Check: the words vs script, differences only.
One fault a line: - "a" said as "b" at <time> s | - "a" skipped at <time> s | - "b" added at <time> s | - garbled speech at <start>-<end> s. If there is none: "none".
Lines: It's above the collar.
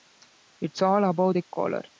- "all" added at 0.8 s